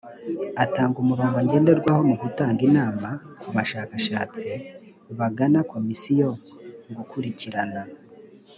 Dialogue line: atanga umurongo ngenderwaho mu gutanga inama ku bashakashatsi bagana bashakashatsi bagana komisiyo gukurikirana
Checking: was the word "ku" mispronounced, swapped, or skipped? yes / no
no